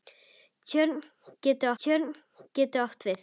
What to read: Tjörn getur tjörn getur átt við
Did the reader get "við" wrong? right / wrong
right